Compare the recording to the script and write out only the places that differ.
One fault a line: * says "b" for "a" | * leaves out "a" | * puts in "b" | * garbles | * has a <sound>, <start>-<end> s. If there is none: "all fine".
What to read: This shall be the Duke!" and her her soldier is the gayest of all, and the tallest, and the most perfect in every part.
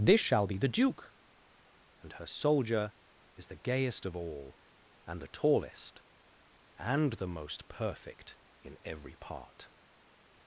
* leaves out "her"